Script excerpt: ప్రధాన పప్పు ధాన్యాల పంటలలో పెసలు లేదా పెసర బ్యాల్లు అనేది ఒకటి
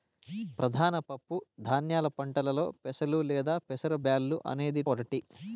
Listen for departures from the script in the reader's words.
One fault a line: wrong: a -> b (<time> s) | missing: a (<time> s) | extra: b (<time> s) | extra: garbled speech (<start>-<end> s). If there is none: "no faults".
no faults